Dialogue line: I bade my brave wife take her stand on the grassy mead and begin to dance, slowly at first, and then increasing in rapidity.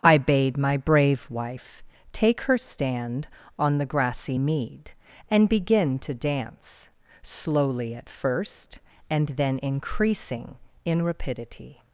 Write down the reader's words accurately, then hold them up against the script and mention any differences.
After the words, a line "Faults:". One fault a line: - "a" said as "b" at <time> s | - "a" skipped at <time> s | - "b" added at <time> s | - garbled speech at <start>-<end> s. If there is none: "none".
I bade my brave wife take her stand on the grassy mead and begin to dance, slowly at first, and then increasing in rapidity.
Faults:
none